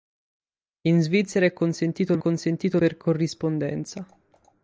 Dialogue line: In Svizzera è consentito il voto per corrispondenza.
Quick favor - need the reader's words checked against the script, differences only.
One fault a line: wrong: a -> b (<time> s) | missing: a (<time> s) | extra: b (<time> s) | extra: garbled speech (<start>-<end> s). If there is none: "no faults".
wrong: voto -> consentito (2.2 s)